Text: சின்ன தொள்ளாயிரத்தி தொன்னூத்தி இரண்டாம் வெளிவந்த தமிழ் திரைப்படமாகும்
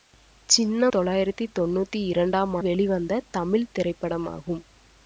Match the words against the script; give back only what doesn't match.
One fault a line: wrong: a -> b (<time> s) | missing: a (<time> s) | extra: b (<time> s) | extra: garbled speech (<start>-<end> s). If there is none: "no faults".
no faults